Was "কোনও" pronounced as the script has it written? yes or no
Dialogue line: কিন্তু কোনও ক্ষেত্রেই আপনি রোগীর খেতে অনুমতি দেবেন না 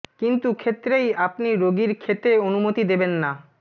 no